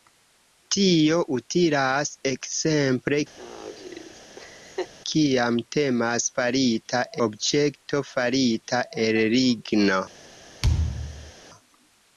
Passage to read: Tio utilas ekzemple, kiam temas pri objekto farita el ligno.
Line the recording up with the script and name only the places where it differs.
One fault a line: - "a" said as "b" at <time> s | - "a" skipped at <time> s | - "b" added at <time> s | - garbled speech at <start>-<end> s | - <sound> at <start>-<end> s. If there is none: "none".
- laugh at 3.4-4.9 s
- "pri" said as "farita" at 6.3 s
- thud at 10.6-11.3 s